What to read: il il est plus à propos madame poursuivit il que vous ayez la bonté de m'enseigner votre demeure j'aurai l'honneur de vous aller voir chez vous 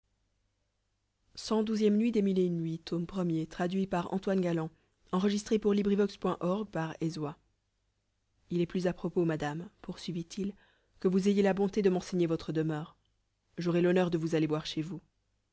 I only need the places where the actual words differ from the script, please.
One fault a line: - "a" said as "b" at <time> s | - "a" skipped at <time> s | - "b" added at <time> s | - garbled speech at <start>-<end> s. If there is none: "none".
- "il" skipped at 1.5 s